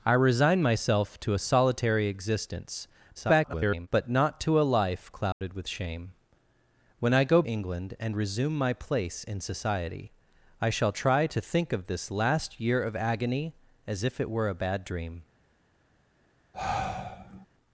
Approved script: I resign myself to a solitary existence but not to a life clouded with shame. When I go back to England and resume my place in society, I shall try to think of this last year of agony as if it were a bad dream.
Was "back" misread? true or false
true